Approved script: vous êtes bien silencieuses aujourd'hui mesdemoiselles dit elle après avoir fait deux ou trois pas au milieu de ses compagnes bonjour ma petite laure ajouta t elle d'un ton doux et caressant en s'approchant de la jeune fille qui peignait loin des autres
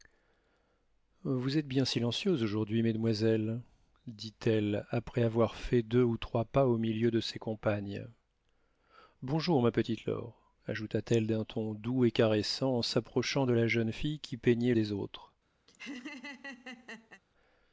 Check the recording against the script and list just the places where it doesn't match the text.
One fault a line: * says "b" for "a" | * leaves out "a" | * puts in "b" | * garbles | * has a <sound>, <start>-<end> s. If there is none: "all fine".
* leaves out "loin"
* has a laugh, 15.7-17.2 s